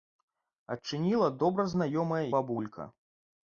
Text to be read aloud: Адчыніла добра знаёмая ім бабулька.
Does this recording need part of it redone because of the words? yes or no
yes